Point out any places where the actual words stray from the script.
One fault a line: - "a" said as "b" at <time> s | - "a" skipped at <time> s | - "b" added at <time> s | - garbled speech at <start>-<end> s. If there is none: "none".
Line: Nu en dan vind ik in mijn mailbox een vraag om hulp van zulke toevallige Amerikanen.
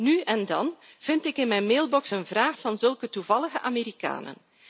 - "om hulp" skipped at 2.6 s